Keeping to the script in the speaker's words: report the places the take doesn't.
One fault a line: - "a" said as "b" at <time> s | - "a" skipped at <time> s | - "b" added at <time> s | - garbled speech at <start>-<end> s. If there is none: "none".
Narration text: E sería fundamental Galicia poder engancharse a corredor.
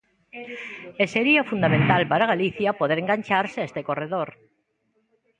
- "para" added at 2.1 s
- "este" added at 3.7 s